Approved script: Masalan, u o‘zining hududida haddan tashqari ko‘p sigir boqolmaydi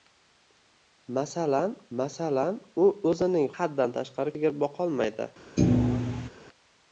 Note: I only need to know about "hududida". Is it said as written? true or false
false